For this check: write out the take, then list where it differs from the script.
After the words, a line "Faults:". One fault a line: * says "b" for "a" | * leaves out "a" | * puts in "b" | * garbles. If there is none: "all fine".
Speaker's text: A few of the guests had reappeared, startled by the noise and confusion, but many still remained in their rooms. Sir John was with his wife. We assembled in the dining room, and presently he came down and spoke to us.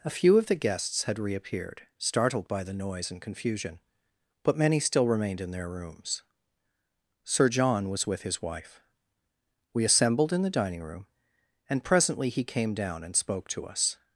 A few of the guests had reappeared, startled by the noise and confusion, but many still remained in their rooms. Sir John was with his wife. We assembled in the dining room, and presently he came down and spoke to us.
Faults:
all fine